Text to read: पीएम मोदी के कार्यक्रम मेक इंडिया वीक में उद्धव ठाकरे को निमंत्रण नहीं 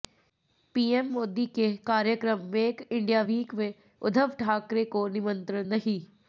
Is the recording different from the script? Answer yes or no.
no